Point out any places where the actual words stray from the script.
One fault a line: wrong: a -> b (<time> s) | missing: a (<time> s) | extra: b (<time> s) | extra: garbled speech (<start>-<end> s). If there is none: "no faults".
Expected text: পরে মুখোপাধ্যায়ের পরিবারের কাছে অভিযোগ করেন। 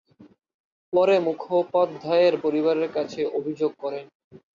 no faults